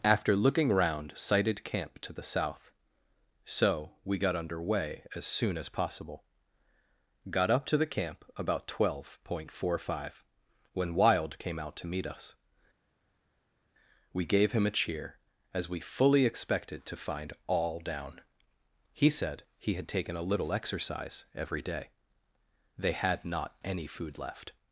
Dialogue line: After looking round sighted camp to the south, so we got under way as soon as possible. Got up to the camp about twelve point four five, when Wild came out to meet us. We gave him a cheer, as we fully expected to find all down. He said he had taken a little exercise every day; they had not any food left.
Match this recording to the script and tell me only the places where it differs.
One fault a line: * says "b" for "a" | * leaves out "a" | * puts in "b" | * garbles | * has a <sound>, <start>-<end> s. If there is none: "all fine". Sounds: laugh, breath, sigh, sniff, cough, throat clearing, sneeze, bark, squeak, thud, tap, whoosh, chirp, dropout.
all fine